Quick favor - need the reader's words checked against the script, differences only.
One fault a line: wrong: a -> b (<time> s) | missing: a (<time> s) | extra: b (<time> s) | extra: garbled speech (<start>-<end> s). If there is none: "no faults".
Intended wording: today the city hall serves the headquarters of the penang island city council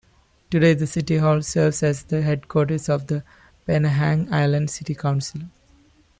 extra: as (1.8 s)